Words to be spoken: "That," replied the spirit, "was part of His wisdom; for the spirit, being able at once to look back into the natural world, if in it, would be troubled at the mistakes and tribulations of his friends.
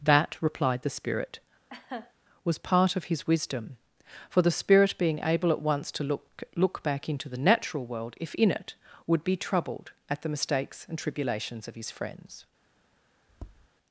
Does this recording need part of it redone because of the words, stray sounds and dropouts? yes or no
yes